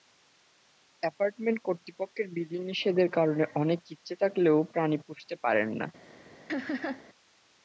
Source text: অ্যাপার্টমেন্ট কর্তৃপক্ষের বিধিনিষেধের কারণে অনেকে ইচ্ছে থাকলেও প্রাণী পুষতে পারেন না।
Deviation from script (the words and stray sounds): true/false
true